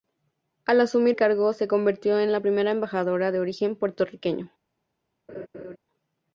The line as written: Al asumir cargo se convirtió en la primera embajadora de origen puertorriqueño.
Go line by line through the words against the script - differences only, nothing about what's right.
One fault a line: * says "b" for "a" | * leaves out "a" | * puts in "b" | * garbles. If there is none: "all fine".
all fine